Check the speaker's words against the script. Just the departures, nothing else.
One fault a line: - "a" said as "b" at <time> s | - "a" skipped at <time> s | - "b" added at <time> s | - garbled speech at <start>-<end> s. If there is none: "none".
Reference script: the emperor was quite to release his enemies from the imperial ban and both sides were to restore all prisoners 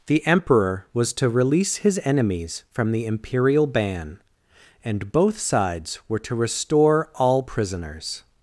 - "quite" skipped at 1.1 s